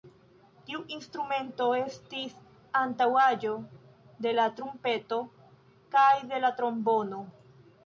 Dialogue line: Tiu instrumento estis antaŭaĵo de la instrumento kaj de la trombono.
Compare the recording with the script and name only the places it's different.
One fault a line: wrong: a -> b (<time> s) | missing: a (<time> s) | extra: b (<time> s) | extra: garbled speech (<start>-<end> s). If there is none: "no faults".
wrong: instrumento -> trumpeto (4.6 s)